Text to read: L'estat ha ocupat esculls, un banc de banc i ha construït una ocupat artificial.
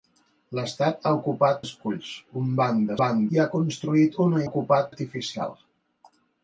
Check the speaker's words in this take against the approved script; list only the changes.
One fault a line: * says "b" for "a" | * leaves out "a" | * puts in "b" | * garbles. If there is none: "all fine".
all fine